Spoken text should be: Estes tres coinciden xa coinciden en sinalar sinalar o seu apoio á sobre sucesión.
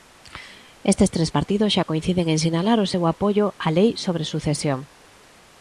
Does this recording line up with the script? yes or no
no